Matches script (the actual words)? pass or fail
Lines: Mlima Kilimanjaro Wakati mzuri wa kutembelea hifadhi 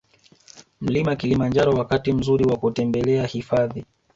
pass